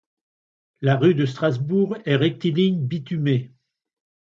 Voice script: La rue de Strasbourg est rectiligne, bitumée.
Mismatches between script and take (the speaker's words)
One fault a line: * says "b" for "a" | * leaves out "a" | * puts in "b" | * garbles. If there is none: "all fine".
all fine